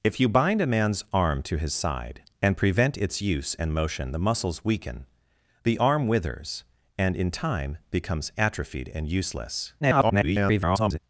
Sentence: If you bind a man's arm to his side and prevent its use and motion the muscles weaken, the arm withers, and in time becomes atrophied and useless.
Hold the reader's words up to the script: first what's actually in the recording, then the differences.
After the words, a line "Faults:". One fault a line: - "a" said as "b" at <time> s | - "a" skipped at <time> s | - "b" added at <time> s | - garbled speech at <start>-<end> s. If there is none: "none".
If you bind a man's arm to his side and prevent its use and motion the muscles weaken, the arm withers, and in time becomes atrophied and useless. [garbled]
Faults:
- garbled speech at 9.8-11.0 s